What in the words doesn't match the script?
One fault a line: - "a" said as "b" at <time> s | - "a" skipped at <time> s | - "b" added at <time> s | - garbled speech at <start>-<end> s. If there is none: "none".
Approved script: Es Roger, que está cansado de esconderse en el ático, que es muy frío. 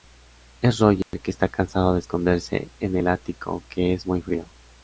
none